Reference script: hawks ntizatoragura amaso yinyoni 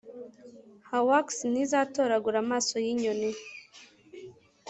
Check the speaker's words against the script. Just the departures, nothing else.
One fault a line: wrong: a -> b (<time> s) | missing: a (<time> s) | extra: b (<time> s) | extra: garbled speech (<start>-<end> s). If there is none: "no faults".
no faults